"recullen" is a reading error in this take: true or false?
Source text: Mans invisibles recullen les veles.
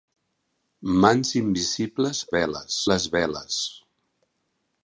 true